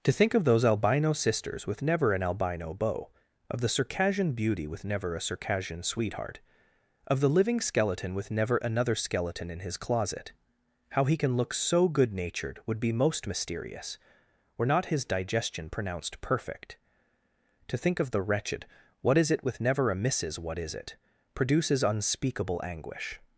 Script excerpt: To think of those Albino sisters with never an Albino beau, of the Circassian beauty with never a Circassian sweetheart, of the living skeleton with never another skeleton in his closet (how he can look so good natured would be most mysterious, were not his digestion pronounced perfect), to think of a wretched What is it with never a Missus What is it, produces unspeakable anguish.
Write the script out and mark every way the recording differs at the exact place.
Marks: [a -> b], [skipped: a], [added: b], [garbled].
To think of those Albino sisters with never an Albino beau, of the Circassian beauty with never a Circassian sweetheart, of the living skeleton with never another skeleton in his closet (how he can look so good natured would be most mysterious, were not his digestion pronounced perfect), to think of [a -> the] wretched What is it with never a Missus What is it, produces unspeakable anguish.